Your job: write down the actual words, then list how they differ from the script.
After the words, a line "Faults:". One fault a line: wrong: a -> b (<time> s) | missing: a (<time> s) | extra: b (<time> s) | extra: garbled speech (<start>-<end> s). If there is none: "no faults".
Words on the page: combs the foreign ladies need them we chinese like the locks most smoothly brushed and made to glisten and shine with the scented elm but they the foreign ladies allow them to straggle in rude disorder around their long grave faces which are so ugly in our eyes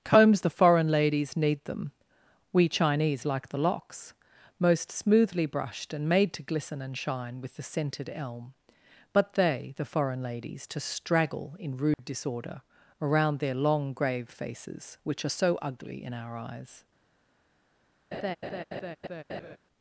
combs the foreign ladies need them we chinese like the locks most smoothly brushed and made to glisten and shine with the scented elm but they the foreign ladies to straggle in rude disorder around their long grave faces which are so ugly in our eyes
Faults:
missing: allow them (10.7 s)